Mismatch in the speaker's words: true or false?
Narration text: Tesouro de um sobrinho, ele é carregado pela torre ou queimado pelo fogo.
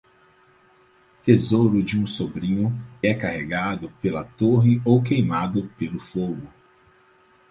true